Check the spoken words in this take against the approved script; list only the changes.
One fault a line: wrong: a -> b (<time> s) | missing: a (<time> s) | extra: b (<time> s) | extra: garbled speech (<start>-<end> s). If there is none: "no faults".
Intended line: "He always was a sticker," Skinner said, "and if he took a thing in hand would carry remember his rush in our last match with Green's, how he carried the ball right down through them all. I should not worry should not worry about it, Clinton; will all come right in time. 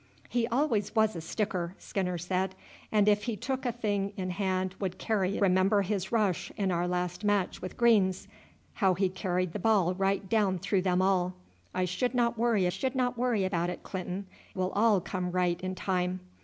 no faults